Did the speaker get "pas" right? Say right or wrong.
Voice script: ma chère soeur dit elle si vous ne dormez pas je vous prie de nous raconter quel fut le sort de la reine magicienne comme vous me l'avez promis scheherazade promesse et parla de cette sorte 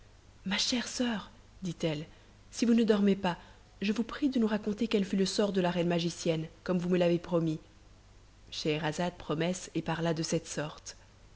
right